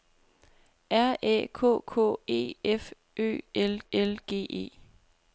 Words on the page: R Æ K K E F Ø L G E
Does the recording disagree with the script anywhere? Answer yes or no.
yes